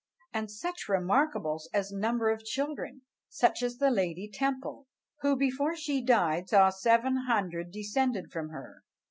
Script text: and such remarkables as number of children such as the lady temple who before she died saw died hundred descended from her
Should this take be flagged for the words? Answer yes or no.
yes